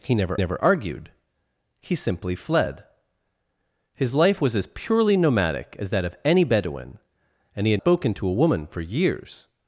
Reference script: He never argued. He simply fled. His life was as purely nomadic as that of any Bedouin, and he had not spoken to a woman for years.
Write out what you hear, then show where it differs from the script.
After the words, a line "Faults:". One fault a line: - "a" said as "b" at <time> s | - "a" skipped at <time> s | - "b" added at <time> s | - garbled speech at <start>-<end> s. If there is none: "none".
He never never argued. He simply fled. His life was as purely nomadic as that of any Bedouin, and he had spoken to a woman for years.
Faults:
- "never" added at 0.4 s
- "not" skipped at 7.8 s